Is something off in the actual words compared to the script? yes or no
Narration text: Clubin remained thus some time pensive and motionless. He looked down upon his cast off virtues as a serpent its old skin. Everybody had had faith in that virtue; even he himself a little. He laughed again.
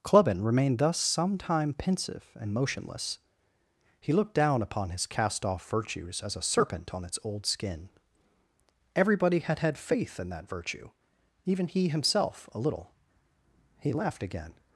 yes